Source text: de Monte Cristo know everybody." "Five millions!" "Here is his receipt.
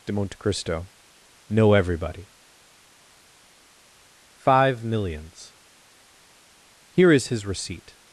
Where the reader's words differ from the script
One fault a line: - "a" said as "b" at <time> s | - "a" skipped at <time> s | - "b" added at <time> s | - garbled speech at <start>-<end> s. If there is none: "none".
none